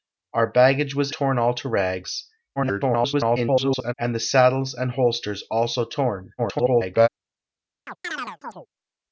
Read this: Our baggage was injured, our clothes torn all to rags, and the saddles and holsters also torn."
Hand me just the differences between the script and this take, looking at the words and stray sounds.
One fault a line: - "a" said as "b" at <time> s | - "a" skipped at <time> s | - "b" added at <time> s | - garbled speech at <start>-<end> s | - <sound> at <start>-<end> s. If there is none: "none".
- "injured our clothes" skipped at 1.1 s
- garbled speech at 2.6-3.9 s
- garbled speech at 6.4-7.1 s
- chirp at 7.9-8.7 s